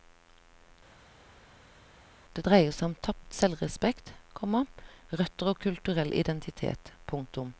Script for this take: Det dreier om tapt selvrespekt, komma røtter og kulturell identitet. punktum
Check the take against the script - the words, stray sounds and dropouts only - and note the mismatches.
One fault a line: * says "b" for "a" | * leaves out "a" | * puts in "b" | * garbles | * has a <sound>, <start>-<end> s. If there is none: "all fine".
* puts in "seg"